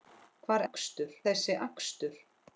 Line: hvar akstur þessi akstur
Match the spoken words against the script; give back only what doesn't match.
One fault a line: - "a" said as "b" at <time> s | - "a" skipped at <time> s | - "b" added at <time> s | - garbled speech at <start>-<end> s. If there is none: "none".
none